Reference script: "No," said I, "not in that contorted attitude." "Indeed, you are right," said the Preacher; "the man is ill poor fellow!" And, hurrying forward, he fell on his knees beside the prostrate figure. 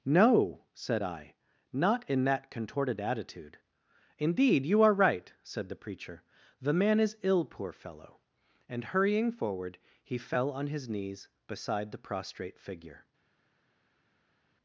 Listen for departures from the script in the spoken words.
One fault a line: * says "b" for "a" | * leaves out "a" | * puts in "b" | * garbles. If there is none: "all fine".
all fine